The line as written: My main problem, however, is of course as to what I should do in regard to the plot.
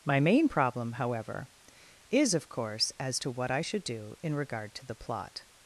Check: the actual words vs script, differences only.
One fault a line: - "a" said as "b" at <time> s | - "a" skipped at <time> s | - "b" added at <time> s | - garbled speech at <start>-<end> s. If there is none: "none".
none